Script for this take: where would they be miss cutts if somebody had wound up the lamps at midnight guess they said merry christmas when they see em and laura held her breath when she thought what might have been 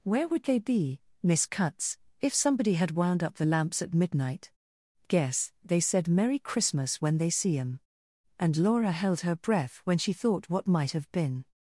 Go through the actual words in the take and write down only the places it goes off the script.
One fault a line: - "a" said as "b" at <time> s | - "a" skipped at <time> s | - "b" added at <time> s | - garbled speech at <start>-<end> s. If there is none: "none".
none